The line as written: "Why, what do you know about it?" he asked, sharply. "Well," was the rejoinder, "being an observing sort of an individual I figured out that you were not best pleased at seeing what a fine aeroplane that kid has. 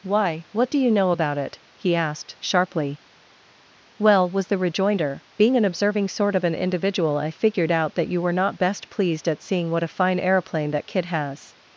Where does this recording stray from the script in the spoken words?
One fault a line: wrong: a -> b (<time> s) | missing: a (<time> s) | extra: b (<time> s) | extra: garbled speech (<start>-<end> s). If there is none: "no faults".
no faults